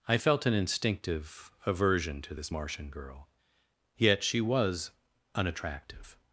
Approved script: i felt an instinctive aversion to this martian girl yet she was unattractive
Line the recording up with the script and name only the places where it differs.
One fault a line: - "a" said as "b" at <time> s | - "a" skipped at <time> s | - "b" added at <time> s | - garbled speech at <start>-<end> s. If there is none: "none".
none